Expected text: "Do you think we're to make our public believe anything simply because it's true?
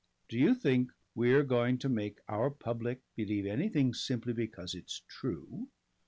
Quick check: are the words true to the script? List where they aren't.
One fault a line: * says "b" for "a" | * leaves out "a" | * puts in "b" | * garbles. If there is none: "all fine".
* puts in "going"